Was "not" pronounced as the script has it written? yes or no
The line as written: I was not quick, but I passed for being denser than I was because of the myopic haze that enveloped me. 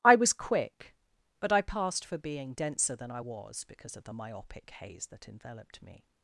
no